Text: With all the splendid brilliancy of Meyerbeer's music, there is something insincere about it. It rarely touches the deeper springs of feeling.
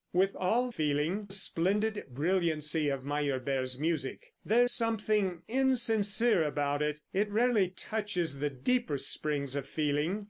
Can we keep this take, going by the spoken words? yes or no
no